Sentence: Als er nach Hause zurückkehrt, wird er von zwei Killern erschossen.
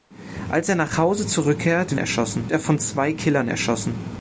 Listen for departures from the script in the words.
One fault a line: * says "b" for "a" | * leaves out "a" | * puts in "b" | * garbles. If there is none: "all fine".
* says "erschossen" for "wird"